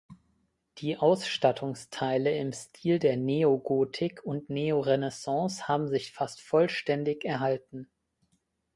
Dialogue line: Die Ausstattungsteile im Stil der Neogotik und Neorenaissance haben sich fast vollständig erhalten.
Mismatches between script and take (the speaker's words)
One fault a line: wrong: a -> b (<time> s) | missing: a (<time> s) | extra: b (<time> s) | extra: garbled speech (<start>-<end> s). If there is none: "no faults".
no faults